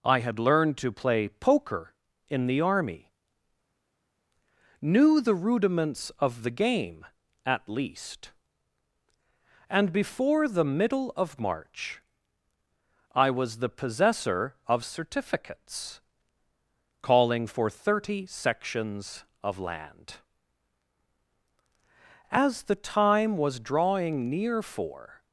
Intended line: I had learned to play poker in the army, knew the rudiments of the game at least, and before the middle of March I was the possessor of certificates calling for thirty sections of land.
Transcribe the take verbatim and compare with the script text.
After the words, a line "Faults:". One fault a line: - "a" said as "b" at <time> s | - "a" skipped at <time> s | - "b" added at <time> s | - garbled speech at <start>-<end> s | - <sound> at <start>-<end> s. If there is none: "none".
I had learned to play poker in the army, knew the rudiments of the game at least, and before the middle of March I was the possessor of certificates calling for thirty sections of land. As the time was drawing near for
Faults:
- "As the time was drawing near for" added at 22.3 s